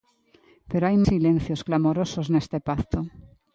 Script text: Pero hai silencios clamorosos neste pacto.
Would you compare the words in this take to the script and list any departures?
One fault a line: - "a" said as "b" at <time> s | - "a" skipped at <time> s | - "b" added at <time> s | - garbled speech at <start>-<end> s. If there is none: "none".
none